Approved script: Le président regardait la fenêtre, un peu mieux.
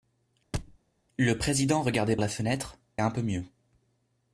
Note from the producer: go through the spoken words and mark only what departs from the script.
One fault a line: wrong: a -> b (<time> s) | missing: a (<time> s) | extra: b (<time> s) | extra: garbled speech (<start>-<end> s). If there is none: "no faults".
no faults